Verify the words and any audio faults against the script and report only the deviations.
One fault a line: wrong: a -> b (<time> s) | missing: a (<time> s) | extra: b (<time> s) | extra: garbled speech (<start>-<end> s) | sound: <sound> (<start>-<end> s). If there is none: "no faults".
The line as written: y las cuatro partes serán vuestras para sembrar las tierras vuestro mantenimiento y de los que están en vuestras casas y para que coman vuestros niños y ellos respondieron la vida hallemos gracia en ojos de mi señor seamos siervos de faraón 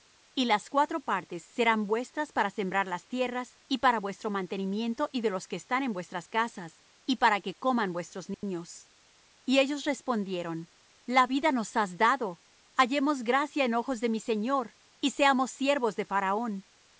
extra: y para (3.7 s)
sound: dropout (8.3-8.4 s)
extra: nos has dado (11.5 s)
extra: y (15.0 s)